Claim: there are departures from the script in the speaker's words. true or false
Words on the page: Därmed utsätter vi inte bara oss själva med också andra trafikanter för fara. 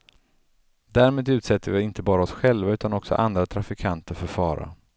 true